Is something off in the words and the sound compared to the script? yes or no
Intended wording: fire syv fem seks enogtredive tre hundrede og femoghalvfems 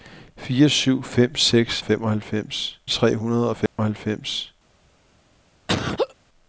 yes